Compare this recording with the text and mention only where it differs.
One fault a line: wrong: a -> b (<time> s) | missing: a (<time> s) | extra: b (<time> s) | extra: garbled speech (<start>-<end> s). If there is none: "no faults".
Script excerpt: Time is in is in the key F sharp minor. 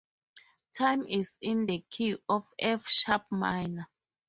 missing: is in (1.7 s)
extra: of (2.3 s)